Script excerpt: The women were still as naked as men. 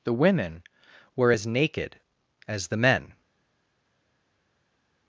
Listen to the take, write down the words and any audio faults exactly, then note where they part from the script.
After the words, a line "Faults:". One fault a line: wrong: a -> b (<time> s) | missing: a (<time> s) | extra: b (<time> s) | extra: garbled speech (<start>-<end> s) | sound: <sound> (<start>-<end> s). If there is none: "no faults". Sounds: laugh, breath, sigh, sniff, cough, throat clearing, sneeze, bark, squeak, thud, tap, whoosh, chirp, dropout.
The women were as naked as the men.
Faults:
missing: still (1.3 s)
extra: the (2.7 s)